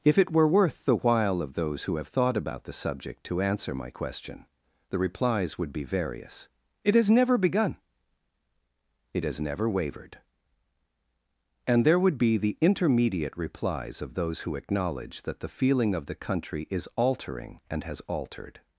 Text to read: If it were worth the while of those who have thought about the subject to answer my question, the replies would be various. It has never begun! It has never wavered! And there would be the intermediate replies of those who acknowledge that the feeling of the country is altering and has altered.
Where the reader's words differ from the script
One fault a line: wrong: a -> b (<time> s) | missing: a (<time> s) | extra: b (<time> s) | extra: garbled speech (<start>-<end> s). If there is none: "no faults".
no faults